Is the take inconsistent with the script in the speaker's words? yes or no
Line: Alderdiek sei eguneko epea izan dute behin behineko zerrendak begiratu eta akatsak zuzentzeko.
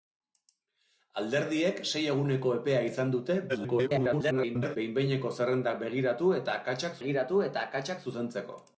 yes